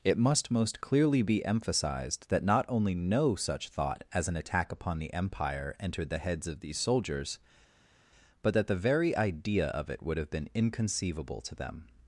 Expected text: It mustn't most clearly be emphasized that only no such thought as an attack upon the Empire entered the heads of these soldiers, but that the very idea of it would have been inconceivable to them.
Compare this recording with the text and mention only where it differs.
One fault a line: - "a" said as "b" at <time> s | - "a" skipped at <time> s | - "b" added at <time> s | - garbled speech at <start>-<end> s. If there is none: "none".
- "mustn't" said as "must" at 0.2 s
- "not" added at 2.4 s